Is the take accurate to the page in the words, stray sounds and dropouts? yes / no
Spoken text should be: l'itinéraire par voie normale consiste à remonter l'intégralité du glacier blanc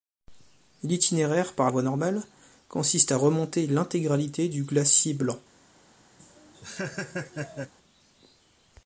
no